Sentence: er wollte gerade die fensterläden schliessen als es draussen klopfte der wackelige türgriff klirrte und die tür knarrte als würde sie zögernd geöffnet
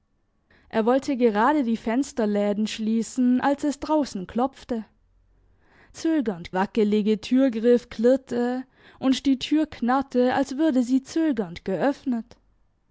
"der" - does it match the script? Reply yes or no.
no